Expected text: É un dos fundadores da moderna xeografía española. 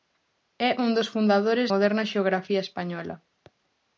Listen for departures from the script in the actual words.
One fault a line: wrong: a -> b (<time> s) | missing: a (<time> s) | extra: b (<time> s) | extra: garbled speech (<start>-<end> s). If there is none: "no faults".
missing: da (1.7 s)